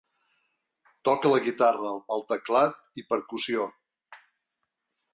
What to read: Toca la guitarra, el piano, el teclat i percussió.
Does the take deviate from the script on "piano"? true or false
true